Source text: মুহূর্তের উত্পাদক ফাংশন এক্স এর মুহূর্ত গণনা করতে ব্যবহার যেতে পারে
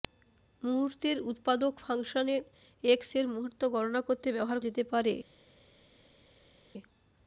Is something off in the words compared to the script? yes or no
no